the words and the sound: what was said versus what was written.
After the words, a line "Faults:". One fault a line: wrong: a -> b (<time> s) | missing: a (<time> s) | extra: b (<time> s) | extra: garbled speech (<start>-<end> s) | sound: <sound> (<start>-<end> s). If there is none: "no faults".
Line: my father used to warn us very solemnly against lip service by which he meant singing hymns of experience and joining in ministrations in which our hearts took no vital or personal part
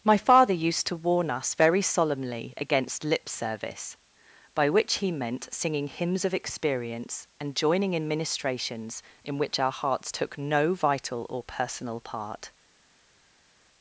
my father used to warn us very solemnly against lip service by which he meant singing hymns of experience and joining in ministrations in which our hearts took no vital or personal part
Faults:
no faults